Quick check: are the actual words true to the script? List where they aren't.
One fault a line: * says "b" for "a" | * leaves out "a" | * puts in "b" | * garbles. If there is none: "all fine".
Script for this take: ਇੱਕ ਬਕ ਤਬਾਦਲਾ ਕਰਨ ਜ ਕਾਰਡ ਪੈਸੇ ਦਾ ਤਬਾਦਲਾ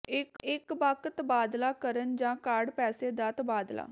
* puts in "ਇੱਕ"